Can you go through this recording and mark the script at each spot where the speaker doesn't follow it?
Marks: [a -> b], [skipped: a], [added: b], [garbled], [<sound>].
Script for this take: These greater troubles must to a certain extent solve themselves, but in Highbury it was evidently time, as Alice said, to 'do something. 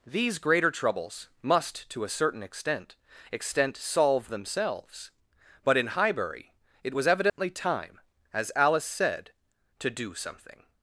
These greater troubles must to a certain extent [added: extent] solve themselves, but in Highbury it was evidently [dropout] time, as Alice said, to 'do something.